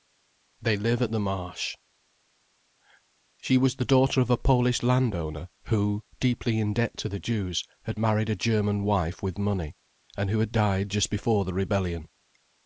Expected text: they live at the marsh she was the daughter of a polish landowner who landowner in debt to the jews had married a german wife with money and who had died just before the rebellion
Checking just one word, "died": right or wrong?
right